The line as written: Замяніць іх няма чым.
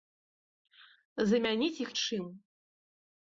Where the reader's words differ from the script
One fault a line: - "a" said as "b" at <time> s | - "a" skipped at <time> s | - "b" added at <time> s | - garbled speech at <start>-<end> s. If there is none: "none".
- "няма" skipped at 1.9 s